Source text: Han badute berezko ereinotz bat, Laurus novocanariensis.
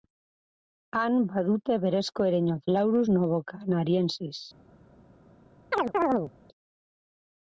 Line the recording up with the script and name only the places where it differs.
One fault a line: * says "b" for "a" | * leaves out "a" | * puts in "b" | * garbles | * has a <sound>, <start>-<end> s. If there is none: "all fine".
* leaves out "bat"
* has a chirp, 5.7-6.3 s